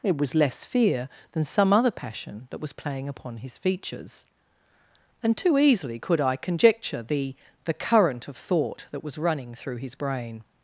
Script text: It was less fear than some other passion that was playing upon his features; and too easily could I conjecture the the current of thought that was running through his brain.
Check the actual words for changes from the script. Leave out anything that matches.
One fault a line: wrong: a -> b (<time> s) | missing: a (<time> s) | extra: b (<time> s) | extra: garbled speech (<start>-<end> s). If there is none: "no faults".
no faults